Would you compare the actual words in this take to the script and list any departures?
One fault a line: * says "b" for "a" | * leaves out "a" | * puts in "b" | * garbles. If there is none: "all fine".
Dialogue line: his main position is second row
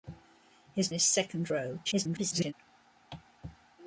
* leaves out "main position"
* garbles